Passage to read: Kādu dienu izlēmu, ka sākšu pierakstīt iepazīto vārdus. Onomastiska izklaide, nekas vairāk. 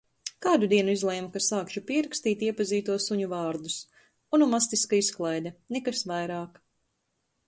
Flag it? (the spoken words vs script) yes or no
yes